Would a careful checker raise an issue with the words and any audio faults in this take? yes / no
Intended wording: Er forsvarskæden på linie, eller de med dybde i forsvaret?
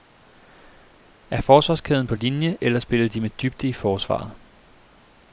yes